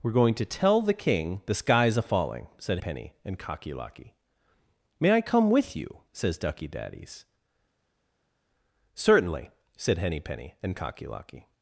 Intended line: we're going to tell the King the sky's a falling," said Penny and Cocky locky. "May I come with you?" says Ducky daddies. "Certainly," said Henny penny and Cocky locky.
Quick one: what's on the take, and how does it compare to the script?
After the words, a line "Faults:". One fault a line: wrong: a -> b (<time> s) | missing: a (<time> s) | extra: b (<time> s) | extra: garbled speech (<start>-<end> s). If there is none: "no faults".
we're going to tell the King the sky's a falling," said Penny and Cocky locky. "May I come with you?" says Ducky daddies. "Certainly," said Henny penny and Cocky locky.
Faults:
no faults